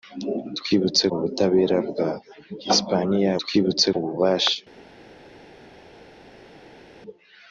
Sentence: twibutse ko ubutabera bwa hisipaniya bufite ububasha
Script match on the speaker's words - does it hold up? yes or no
no